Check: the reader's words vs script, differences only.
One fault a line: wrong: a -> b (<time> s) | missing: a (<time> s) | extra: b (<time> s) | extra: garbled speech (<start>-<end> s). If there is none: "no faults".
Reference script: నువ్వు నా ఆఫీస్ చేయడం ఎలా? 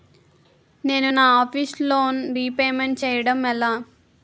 wrong: నువ్వు -> నేను (0.8 s)
extra: లోన్ రీపేమెంట్ (1.8 s)